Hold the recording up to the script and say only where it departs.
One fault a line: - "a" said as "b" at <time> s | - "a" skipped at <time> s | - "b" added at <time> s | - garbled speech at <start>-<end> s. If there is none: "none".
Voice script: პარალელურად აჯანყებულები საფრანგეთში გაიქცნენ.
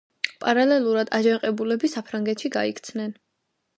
none